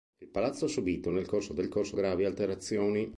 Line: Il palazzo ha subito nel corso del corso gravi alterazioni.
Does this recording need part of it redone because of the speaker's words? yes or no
no